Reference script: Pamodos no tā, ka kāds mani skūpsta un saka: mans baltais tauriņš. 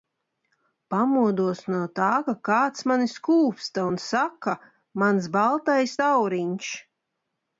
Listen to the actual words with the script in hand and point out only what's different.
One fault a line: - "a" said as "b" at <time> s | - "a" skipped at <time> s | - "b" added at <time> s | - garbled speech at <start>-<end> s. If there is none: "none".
none